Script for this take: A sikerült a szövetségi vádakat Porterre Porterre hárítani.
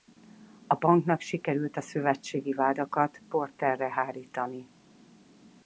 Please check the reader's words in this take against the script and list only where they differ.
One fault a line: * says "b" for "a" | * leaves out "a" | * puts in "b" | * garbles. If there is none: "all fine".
* puts in "banknak"
* leaves out "Porterre"